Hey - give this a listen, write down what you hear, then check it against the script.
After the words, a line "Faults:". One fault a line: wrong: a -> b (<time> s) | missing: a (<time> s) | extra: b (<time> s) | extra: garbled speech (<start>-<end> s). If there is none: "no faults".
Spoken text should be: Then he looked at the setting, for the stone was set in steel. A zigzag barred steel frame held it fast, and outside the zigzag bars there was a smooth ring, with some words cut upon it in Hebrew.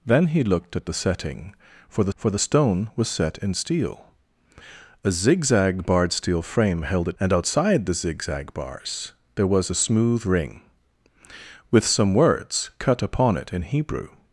Then he looked at the setting, for the for the stone was set in steel. A zigzag barred steel frame held it and outside the zigzag bars there was a smooth ring, with some words cut upon it in Hebrew.
Faults:
extra: for the (2.1 s)
missing: fast (7.2 s)